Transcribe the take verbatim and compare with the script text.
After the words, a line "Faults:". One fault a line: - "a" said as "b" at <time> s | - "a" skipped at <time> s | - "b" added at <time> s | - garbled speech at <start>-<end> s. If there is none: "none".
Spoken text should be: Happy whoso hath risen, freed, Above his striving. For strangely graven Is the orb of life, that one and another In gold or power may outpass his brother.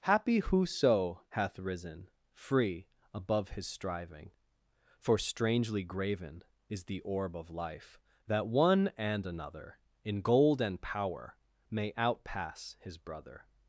Happy whoso hath risen, free, Above his striving. For strangely graven Is the orb of life, that one and another In gold and power may outpass his brother.
Faults:
- "freed" said as "free" at 2.3 s
- "or" said as "and" at 10.6 s